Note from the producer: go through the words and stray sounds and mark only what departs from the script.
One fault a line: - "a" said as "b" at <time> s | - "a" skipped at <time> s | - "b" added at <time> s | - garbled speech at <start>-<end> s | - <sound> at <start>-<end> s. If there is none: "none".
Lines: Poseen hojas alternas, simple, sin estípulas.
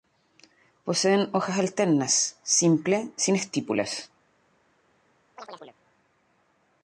- chirp at 5.4-5.8 s